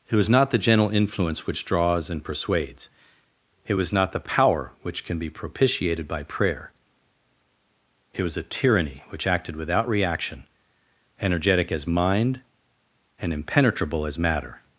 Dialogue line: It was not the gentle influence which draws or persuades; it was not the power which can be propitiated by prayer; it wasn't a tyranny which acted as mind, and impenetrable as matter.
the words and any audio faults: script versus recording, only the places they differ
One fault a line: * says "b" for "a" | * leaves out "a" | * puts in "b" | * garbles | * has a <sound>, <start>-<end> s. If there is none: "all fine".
* says "and" for "or"
* says "was" for "wasn't"
* puts in "without reaction energetic"